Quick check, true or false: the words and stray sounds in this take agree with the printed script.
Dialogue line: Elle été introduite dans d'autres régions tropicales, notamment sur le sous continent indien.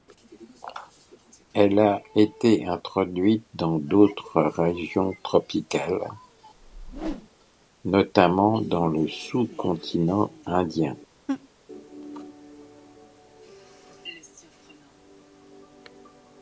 false